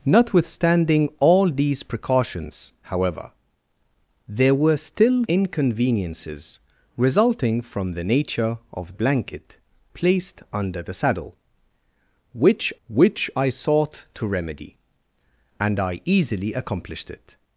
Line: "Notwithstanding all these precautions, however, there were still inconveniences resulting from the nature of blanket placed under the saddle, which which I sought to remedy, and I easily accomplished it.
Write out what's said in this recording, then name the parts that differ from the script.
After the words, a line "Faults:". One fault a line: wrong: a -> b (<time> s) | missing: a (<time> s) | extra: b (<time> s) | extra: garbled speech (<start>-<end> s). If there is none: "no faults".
"Notwithstanding all these precautions, however, there were still inconveniences resulting from the nature of blanket placed under the saddle, which which I sought to remedy, and I easily accomplished it.
Faults:
no faults